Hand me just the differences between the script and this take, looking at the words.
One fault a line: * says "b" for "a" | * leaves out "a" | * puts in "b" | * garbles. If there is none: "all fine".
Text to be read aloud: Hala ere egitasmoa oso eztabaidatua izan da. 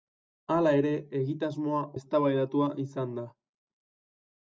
* leaves out "oso"